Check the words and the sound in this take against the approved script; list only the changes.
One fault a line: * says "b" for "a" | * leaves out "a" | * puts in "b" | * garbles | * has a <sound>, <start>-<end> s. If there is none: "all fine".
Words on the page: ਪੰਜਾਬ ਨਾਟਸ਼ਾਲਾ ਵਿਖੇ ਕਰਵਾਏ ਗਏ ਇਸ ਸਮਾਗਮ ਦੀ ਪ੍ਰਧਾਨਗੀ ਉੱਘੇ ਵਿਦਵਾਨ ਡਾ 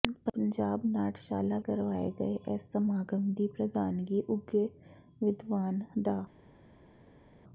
* leaves out "ਵਿਖੇ"